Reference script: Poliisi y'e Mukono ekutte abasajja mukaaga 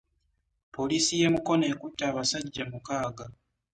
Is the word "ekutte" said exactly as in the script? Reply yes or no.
yes